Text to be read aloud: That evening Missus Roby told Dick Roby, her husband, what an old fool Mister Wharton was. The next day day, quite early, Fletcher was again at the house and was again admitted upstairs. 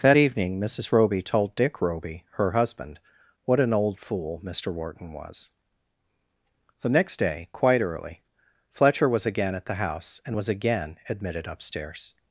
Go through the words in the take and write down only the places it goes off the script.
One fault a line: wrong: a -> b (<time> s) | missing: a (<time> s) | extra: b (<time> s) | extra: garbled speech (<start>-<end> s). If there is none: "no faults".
missing: day (7.5 s)